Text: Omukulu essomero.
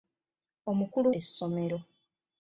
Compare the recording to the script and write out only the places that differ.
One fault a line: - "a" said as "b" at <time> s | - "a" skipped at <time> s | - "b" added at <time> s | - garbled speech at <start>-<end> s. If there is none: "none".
none